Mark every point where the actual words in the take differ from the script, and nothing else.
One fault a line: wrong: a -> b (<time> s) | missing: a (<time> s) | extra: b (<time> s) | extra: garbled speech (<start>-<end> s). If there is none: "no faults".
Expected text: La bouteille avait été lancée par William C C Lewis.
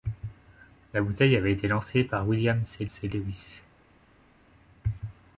no faults